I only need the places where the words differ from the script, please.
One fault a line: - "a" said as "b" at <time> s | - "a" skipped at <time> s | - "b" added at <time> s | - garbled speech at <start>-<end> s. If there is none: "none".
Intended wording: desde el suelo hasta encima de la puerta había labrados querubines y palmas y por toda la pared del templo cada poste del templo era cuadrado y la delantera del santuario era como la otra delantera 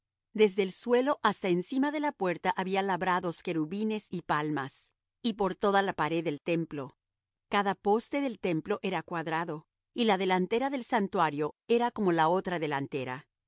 none